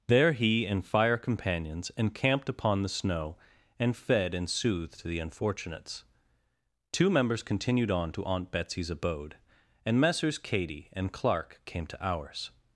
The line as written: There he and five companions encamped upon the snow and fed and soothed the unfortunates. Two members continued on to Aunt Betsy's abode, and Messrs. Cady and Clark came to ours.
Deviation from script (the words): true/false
true